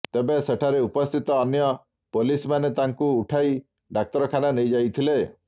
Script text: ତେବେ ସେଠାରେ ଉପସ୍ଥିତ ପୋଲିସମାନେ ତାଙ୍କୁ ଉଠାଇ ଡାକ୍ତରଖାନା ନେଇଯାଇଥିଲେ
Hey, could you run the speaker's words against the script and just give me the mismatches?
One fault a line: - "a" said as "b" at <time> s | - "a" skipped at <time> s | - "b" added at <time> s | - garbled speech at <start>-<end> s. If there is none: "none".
- "ଅନ୍ୟ" added at 1.4 s